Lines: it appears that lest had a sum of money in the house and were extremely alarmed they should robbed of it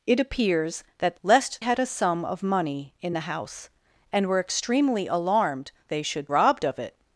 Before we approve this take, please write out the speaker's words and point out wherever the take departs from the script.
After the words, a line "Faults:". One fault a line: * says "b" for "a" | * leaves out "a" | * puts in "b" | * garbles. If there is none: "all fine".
it appears that lest had a sum of money in the house and were extremely alarmed they should robbed of it
Faults:
all fine